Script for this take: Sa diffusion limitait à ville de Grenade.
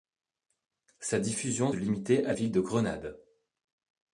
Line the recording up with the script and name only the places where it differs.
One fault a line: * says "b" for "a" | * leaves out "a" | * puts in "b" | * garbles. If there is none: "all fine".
all fine